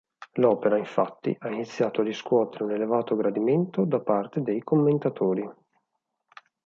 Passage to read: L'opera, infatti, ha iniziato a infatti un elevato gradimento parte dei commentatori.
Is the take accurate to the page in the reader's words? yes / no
no